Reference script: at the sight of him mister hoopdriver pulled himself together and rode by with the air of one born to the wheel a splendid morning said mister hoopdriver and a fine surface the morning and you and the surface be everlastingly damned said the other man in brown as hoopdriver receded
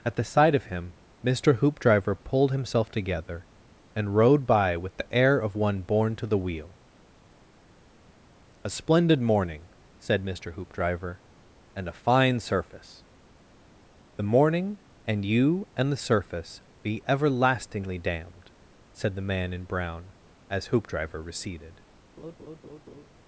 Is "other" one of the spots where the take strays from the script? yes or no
yes